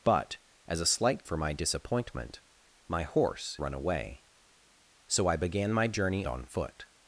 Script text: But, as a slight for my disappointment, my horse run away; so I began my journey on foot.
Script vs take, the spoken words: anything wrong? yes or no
no